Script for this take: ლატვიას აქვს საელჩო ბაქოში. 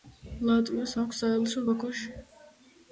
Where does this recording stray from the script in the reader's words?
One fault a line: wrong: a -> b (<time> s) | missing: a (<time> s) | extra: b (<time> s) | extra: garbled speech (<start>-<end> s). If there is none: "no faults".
no faults